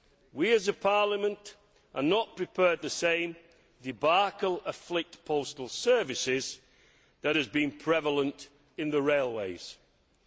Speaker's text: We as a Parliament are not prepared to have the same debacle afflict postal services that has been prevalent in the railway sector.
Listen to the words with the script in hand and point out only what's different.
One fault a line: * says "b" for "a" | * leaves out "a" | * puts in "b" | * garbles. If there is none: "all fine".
* leaves out "to have"